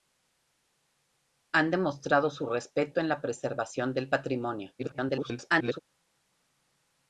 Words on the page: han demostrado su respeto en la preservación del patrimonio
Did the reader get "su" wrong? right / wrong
right